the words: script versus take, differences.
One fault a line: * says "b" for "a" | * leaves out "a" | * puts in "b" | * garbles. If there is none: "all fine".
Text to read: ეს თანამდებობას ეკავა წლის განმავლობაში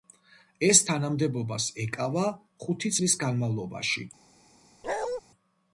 * puts in "ხუთი"